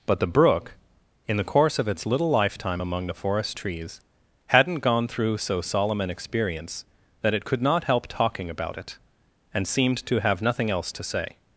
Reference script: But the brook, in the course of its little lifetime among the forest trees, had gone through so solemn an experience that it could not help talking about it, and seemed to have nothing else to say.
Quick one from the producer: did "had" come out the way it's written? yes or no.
no